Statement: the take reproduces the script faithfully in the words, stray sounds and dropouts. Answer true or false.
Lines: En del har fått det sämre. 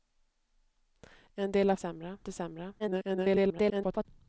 false